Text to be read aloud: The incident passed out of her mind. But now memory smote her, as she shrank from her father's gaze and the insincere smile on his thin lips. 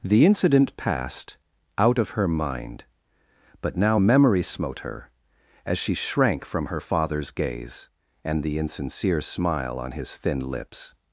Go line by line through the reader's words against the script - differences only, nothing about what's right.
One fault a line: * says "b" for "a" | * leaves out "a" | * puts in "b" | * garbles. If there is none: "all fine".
all fine